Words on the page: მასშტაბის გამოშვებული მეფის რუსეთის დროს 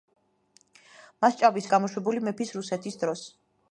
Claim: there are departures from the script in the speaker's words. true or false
false